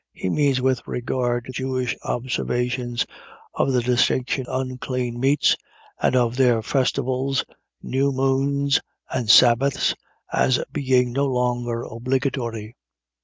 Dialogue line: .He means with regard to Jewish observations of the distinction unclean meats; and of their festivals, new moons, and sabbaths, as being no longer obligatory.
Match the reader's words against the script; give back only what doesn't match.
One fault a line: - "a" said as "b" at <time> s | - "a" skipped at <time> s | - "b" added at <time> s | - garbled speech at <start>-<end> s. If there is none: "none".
none